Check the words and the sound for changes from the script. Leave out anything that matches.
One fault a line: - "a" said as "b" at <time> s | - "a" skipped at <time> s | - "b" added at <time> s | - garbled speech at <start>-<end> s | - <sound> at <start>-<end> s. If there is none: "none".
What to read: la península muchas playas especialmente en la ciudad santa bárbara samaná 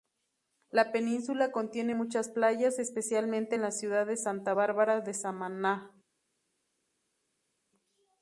- "contiene" added at 1.5 s
- "de" added at 4.0 s
- "de" added at 5.0 s